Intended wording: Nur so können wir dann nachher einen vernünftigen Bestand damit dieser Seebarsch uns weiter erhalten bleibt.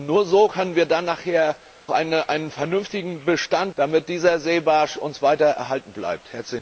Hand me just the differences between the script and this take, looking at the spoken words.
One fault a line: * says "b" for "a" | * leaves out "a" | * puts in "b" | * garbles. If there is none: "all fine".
all fine